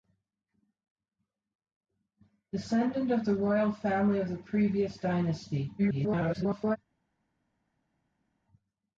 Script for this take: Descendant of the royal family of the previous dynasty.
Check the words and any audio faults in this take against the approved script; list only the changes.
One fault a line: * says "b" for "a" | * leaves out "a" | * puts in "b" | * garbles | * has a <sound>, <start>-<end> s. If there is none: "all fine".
* garbles